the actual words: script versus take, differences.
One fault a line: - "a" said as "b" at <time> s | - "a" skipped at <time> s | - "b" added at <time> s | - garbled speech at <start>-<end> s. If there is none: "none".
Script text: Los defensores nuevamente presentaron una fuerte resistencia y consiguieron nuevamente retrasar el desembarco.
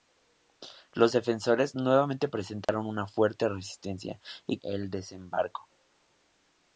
- "consiguieron nuevamente retrasar" skipped at 4.6 s